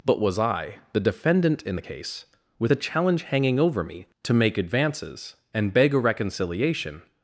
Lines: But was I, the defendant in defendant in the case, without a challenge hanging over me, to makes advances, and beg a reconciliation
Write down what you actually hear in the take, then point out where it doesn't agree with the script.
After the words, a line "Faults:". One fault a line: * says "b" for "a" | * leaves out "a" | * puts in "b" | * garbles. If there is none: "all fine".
But was I, the defendant in the case, with a challenge hanging over me, to make advances, and beg a reconciliation
Faults:
* leaves out "defendant in"
* says "with" for "without"
* says "make" for "makes"